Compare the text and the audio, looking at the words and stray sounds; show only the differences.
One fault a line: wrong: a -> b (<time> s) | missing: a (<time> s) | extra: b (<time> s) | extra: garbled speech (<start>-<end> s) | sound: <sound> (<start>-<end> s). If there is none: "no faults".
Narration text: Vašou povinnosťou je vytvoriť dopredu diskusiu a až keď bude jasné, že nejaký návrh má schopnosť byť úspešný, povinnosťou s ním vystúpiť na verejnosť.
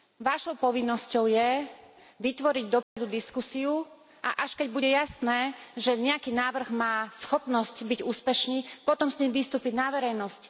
sound: dropout (2.8-3.0 s)
wrong: povinnosťou -> potom (8.8 s)